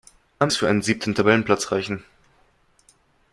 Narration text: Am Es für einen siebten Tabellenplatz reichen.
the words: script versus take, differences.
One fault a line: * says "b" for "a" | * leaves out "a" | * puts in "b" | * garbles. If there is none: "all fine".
all fine